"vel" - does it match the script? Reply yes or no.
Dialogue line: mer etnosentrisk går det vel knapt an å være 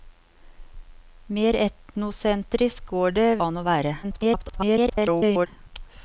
no